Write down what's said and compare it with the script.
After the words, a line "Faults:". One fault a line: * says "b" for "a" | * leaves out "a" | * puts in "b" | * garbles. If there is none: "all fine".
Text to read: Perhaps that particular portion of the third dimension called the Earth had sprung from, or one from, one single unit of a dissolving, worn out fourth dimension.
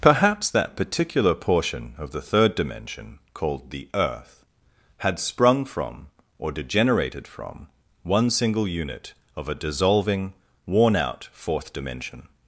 Perhaps that particular portion of the third dimension called the Earth had sprung from, or degenerated from, one single unit of a dissolving, worn out fourth dimension.
Faults:
* says "degenerated" for "one"